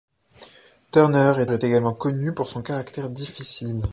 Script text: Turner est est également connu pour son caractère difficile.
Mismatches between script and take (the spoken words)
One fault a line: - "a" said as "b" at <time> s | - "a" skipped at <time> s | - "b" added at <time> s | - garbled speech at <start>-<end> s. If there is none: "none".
none